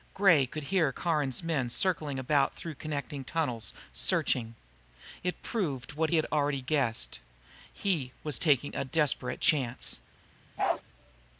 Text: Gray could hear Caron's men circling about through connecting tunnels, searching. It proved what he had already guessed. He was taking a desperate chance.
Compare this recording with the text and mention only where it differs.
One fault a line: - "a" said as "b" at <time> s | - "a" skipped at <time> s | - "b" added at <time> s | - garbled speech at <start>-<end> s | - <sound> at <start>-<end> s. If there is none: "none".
- "he" skipped at 6.1 s
- bark at 10.6-10.8 s